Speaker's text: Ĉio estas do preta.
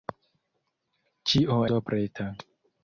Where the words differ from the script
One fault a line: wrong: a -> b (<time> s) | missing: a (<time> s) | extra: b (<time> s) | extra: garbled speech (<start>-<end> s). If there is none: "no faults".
missing: estas (1.6 s)